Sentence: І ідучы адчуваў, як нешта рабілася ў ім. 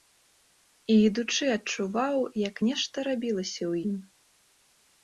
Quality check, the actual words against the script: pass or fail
pass